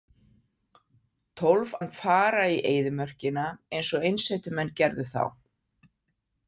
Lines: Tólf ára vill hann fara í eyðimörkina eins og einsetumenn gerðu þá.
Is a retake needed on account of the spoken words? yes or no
yes